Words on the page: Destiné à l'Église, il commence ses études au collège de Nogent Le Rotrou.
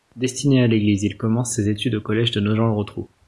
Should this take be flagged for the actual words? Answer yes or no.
no